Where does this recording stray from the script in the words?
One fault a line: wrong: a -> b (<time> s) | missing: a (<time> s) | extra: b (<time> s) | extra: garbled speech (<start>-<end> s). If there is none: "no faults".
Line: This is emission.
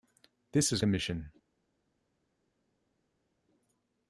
no faults